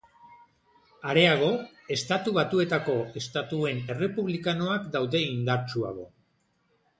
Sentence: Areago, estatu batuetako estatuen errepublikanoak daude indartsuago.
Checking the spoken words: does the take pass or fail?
pass